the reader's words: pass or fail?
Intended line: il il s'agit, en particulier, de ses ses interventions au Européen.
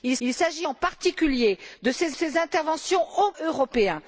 pass